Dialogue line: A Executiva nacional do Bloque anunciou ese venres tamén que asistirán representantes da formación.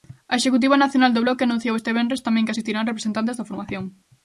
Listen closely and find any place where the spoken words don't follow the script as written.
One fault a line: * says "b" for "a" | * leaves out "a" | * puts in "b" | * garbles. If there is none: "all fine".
* says "este" for "ese"